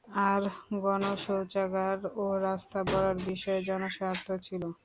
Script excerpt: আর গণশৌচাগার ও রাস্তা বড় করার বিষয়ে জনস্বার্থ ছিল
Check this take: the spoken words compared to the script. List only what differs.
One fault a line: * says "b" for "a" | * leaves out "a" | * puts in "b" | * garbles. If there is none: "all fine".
* leaves out "বড়"